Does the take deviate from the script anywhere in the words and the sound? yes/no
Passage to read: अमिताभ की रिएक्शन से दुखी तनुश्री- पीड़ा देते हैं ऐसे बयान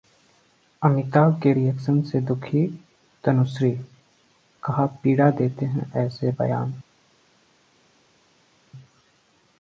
yes